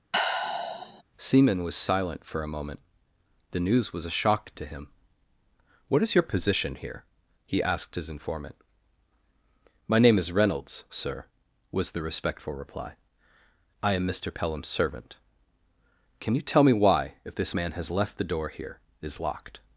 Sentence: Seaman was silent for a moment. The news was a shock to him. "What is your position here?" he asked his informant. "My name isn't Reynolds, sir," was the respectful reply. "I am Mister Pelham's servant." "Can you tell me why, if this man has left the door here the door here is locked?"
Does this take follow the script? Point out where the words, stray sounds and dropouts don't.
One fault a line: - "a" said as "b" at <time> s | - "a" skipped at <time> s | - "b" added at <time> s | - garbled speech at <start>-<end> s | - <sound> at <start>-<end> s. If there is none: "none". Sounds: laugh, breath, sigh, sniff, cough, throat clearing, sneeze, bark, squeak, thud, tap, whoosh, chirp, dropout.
- sigh at 0.1-1.0 s
- "isn't" said as "is" at 10.2 s
- "the door here" skipped at 18.8 s